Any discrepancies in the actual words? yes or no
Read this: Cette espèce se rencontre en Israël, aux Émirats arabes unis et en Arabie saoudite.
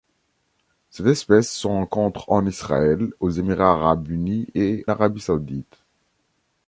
yes